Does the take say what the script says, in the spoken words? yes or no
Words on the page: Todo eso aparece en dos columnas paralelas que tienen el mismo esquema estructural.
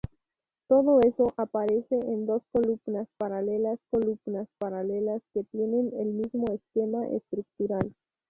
no